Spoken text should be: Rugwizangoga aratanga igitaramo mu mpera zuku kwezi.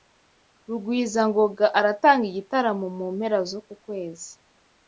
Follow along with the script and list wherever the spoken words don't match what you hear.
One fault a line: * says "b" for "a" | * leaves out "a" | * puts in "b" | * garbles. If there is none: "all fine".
all fine